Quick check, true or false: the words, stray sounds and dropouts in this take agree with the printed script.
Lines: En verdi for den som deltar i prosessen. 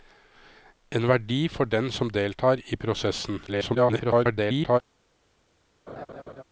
false